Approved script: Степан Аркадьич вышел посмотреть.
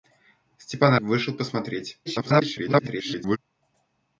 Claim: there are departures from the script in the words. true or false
true